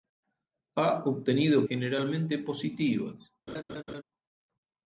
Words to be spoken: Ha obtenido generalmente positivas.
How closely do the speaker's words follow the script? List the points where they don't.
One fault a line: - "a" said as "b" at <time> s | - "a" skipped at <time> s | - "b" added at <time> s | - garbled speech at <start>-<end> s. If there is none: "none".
none